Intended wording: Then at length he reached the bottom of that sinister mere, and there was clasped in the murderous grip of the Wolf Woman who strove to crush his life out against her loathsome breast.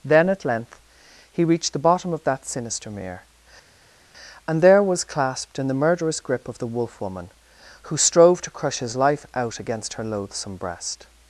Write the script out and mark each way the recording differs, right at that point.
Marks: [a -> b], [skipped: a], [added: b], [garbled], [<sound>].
Then at length he reached the bottom of that sinister mere, and there was clasped in the murderous grip of the Wolf Woman who strove to crush his life out against her loathsome breast.